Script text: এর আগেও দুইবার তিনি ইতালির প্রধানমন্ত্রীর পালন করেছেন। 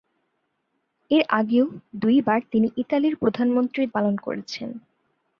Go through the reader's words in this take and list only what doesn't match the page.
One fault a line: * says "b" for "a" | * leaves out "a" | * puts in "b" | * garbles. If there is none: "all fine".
all fine